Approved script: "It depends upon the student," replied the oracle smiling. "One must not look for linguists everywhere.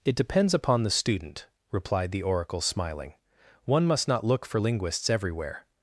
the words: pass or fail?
pass